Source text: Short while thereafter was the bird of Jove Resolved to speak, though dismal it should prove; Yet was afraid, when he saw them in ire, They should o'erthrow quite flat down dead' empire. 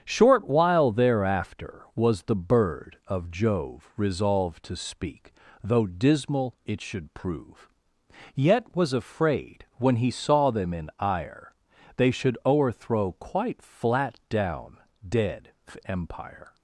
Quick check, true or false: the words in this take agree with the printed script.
true